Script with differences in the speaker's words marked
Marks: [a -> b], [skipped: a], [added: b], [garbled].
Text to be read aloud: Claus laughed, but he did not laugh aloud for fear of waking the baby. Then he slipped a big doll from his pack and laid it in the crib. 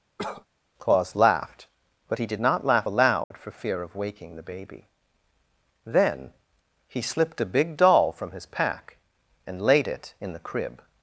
Claus laughed, but he did not laugh aloud for fear of waking the baby. Then he slipped a big doll from his pack and laid it in the crib.